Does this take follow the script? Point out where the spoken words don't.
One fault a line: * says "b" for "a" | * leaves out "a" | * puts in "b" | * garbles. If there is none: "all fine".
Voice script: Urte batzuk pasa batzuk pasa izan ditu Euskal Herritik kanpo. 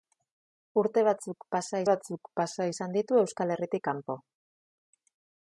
all fine